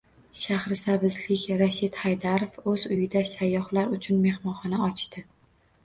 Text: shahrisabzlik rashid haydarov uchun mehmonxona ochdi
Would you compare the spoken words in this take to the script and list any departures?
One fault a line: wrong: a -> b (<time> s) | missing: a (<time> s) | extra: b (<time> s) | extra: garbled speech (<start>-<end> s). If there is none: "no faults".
extra: o‘z uyida sayyohlar (2.7 s)